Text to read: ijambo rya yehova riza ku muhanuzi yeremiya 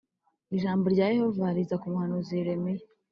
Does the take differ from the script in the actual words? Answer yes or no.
no